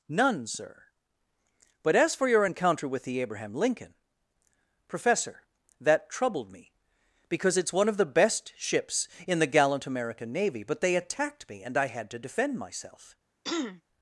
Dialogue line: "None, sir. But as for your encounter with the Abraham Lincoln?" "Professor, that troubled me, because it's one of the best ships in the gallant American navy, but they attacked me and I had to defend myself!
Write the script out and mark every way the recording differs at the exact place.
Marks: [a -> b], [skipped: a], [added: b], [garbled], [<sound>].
"None, sir. But as for your encounter with the Abraham Lincoln?" "Professor, that troubled me, because it's one of the best ships in the gallant American navy, but they attacked me and I had to defend myself! [throat clearing]